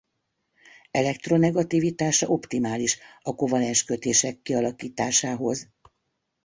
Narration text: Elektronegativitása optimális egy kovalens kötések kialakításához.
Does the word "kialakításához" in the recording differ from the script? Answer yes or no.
no